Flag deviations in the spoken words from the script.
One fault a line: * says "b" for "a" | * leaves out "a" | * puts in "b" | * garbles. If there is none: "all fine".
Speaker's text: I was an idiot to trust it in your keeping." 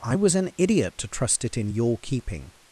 all fine